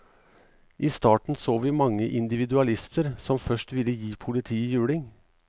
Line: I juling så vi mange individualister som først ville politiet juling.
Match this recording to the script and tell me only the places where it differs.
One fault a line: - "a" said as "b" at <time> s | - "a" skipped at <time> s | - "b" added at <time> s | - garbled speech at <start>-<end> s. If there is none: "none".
- "juling" said as "starten" at 0.9 s
- "gi" added at 3.9 s